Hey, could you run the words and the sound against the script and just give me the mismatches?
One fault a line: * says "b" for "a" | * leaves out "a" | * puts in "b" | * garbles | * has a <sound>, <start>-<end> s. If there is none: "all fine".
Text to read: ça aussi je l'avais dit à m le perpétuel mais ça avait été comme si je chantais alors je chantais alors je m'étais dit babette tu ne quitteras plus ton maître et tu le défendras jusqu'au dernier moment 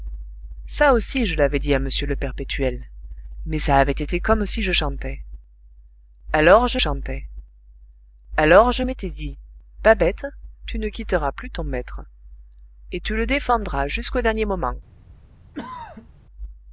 * has a throat clearing, 15.5-16.1 s